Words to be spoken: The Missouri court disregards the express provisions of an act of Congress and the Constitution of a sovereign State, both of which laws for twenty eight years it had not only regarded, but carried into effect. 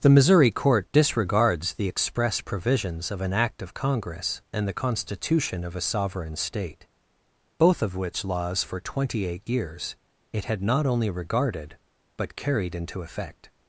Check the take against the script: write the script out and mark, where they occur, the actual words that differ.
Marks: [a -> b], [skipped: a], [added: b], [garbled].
The Missouri court disregards the express provisions of an act of Congress and the Constitution of a sovereign State, both of which laws for twenty eight years it had not only regarded, but carried into effect.